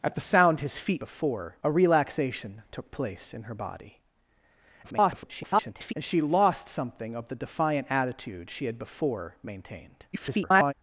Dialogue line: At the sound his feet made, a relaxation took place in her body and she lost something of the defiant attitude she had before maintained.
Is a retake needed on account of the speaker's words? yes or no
yes